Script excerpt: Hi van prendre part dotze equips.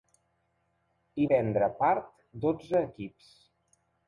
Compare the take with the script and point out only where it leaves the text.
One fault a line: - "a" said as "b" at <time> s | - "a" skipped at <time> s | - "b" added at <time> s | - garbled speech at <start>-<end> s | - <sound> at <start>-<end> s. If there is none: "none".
- "van" skipped at 1.3 s